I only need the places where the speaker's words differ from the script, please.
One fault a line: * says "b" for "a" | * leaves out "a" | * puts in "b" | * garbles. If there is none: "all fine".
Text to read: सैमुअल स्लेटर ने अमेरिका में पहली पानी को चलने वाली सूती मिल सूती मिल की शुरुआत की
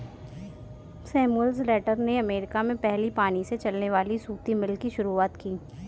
* says "से" for "को"
* leaves out "सूती मिल"